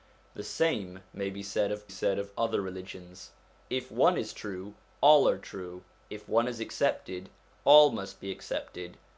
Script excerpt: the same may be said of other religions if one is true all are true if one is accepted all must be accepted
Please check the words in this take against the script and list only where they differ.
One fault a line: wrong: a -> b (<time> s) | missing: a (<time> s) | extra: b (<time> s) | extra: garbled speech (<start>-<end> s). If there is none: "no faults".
extra: said of (1.9 s)